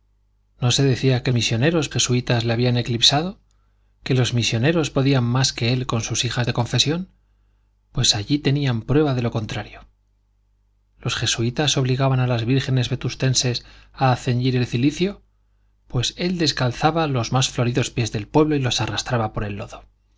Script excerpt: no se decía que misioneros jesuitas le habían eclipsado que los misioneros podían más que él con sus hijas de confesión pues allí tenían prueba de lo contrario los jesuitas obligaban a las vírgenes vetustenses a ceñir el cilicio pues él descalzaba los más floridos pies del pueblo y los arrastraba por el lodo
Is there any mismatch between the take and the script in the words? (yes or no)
no